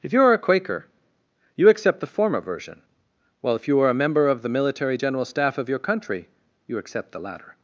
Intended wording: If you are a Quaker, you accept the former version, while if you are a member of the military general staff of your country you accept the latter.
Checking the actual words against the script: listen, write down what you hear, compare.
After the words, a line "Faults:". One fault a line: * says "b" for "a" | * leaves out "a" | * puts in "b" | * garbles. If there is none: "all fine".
If you are a Quaker, you accept the former version, while if you are a member of the military general staff of your country you accept the latter.
Faults:
all fine